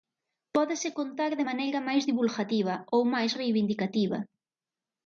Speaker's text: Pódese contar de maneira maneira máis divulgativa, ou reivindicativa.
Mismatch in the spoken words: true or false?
true